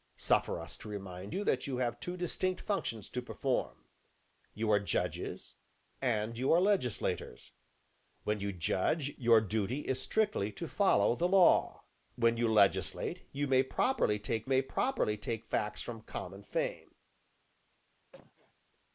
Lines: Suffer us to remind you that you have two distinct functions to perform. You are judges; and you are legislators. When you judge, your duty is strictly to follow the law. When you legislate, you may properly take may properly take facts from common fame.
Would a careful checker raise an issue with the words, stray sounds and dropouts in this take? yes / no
yes